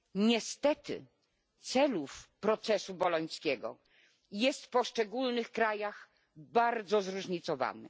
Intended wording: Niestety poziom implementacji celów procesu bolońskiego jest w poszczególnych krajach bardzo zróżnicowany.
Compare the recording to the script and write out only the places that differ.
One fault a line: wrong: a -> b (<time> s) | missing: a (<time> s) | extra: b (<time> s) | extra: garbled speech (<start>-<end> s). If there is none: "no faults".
missing: poziom implementacji (1.1 s)